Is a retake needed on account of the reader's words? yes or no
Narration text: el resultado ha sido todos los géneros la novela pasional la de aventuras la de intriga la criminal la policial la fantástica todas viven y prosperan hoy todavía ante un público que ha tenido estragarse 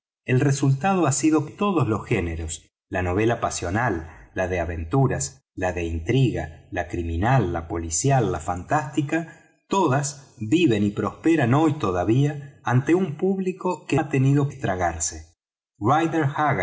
no